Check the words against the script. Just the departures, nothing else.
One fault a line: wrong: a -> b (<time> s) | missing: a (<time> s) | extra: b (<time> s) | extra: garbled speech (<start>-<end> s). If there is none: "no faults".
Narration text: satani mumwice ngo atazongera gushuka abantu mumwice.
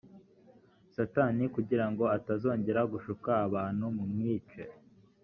wrong: mumwice -> kugira (1.6 s)